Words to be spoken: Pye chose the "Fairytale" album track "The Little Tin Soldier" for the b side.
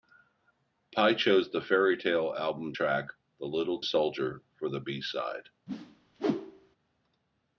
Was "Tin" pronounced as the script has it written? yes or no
no